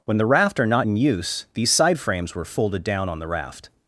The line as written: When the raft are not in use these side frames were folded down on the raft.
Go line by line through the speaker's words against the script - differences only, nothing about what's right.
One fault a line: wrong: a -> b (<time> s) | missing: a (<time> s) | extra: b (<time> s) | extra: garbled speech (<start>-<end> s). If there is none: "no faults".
no faults